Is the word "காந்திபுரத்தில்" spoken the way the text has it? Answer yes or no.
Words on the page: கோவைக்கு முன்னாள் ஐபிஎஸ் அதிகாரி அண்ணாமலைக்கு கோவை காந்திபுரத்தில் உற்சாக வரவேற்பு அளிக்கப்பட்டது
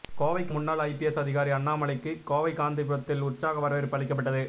yes